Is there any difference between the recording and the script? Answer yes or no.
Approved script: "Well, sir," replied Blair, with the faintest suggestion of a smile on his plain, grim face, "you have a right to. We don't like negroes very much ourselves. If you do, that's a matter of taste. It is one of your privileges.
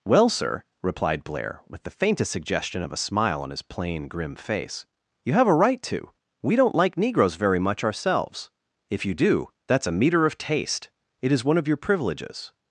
yes